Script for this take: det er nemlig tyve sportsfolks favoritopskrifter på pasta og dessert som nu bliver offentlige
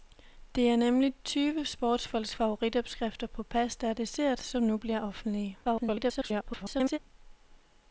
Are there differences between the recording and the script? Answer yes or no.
yes